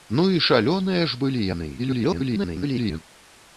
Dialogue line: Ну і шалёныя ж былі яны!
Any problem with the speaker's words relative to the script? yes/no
yes